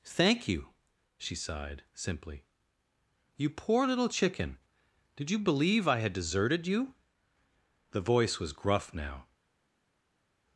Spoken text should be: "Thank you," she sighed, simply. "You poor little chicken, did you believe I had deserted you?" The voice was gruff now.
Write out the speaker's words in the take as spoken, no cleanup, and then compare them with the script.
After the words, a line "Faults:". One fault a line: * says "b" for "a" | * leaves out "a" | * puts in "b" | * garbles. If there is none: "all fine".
"Thank you," she sighed, simply. "You poor little chicken, did you believe I had deserted you?" The voice was gruff now.
Faults:
all fine